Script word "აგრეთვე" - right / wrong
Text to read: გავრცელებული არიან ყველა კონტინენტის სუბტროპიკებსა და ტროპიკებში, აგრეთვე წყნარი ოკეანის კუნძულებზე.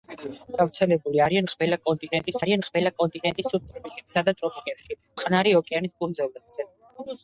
wrong